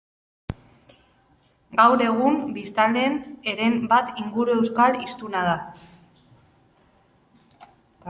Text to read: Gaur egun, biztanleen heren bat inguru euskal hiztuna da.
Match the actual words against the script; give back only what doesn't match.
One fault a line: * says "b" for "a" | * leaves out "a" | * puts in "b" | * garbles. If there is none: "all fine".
all fine